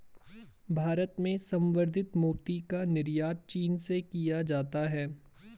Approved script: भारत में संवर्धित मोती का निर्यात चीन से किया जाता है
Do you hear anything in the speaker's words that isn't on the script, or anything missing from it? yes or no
no